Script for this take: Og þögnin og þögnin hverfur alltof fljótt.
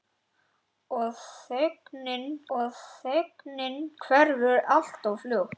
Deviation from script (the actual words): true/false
false